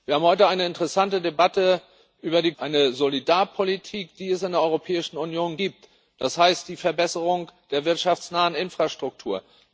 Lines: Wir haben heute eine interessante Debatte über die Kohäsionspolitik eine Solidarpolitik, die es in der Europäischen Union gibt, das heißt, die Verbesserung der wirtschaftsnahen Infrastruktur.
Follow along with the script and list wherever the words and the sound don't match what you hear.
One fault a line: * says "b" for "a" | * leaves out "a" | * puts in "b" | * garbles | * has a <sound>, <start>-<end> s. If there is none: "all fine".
* leaves out "Kohäsionspolitik"